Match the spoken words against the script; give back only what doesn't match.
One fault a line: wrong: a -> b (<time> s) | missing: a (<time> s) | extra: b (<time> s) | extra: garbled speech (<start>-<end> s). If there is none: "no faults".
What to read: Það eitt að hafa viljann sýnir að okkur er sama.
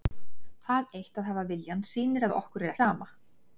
no faults